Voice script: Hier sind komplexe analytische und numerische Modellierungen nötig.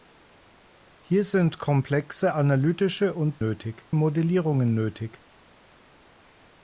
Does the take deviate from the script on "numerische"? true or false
true